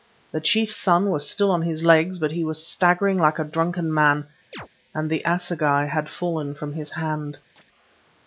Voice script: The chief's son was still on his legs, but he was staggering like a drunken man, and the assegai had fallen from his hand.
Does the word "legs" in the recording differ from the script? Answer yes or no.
no